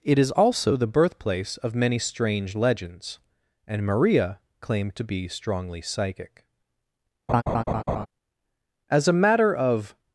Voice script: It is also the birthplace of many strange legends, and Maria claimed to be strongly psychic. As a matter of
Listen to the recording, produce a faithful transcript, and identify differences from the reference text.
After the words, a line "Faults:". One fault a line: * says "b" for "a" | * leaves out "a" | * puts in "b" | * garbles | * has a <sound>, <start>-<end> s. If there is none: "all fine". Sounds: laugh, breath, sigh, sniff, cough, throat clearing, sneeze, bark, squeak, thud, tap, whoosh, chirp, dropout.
It is also the birthplace of many strange legends, and Maria claimed to be strongly psychic. As a matter of
Faults:
* has a laugh, 7.3-8.1 s